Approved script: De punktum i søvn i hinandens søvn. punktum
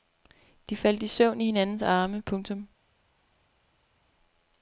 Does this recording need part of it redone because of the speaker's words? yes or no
yes